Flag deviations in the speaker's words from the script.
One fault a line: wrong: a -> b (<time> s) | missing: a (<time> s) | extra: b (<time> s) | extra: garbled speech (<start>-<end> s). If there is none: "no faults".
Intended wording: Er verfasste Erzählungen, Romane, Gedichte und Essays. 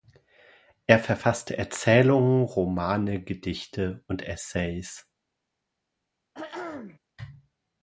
no faults